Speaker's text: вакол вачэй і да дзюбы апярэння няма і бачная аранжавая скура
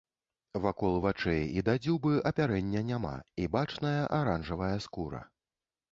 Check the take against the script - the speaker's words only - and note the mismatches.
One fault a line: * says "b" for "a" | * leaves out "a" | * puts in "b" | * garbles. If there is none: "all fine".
all fine